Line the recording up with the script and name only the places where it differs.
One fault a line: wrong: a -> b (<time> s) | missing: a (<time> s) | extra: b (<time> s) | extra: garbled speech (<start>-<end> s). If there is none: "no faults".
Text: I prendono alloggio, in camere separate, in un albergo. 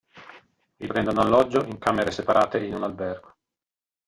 no faults